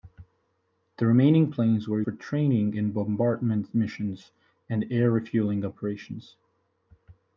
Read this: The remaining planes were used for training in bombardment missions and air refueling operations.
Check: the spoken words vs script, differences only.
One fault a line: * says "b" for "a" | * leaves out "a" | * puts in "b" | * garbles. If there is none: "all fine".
* leaves out "used"